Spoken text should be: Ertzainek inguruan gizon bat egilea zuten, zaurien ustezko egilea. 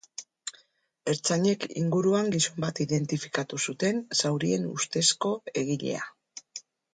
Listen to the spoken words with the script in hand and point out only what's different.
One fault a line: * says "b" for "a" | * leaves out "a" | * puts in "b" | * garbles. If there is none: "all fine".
* says "identifikatu" for "egilea"